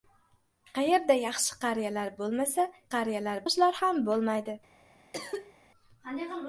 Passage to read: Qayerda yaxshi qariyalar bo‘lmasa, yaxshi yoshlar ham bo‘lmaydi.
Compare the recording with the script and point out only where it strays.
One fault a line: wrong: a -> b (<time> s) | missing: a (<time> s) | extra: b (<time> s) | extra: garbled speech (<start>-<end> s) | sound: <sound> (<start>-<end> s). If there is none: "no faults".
wrong: yaxshi -> qariyalar (3.0 s)
sound: cough (5.1-5.5 s)